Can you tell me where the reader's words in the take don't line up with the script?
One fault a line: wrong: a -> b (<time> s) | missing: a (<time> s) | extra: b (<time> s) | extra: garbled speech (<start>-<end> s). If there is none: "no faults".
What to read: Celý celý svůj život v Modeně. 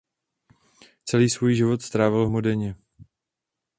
missing: celý (1.3 s)
extra: strávil (1.8 s)